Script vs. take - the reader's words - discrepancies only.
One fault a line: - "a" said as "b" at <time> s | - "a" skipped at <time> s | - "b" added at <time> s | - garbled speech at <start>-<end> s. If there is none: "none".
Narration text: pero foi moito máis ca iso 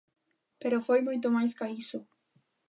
none